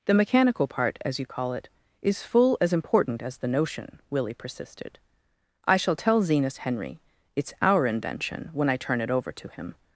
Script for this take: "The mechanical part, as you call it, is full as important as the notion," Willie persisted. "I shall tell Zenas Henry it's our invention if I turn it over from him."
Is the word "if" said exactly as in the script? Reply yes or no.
no